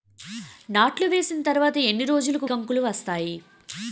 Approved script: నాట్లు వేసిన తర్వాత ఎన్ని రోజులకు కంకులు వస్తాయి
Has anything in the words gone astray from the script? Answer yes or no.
no